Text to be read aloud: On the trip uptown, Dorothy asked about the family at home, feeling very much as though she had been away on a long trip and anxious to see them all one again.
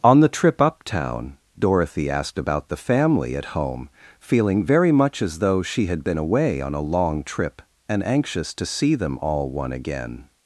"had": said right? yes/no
yes